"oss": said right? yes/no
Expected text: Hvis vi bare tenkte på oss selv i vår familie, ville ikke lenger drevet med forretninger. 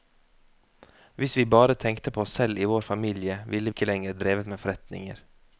yes